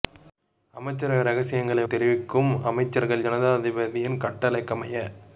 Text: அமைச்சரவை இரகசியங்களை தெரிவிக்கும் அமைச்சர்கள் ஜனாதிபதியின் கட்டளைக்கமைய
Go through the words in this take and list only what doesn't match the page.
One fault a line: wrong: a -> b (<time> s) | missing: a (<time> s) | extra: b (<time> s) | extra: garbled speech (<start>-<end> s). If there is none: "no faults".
no faults